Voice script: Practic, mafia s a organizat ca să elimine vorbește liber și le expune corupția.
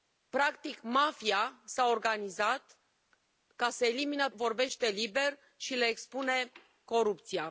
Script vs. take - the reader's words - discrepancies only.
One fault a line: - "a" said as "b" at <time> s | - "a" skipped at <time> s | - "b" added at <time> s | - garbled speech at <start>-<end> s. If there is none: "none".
none